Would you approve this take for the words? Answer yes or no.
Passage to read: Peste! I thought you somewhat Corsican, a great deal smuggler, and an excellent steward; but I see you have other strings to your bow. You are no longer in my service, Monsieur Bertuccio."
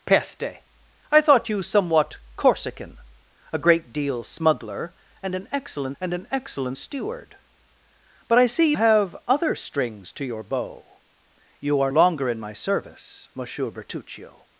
no